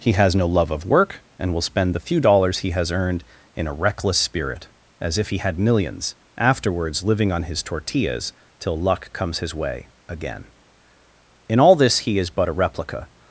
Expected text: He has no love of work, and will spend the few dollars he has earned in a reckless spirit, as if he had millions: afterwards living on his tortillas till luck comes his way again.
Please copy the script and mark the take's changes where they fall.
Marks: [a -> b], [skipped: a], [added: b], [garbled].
He has no love of work, and will spend the few dollars he has earned in a reckless spirit, as if he had millions: afterwards living on his tortillas till luck comes his way again. [added: In all this he is but a replica]